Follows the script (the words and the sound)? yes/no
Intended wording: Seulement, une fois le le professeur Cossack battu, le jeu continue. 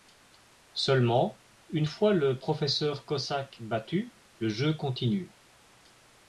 no